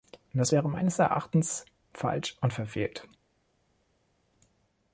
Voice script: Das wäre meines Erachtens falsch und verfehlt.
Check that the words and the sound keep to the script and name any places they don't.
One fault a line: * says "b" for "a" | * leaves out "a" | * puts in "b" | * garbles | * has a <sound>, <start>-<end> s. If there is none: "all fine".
all fine